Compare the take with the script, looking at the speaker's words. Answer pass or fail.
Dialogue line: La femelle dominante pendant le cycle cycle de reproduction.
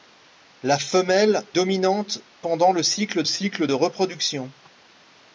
pass